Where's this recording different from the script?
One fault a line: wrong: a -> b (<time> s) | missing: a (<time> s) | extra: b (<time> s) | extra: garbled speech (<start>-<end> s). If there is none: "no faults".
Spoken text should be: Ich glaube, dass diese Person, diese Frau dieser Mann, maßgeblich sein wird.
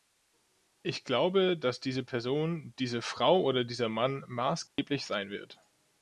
extra: oder (3.4 s)